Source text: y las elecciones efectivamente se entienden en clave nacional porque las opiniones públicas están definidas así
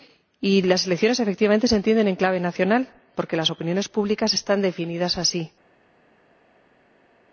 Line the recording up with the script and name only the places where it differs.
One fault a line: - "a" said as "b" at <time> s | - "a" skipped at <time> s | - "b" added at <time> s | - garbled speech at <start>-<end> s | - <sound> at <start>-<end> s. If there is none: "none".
none